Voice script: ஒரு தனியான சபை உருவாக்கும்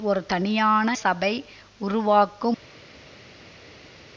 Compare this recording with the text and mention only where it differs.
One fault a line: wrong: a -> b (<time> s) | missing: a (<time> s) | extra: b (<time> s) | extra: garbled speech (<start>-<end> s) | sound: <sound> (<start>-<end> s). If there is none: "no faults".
no faults